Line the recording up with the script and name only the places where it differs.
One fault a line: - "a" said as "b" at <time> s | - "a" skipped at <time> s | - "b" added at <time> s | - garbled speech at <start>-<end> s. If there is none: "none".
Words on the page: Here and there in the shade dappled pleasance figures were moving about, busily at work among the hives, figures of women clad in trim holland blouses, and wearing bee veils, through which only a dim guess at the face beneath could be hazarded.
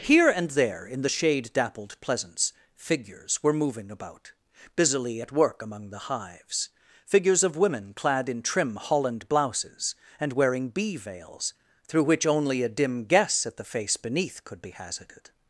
none